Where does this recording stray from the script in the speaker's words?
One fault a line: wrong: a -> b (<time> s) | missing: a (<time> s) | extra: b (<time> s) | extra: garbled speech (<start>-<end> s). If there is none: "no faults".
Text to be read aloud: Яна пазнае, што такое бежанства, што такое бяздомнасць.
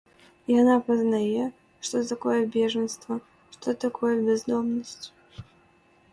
no faults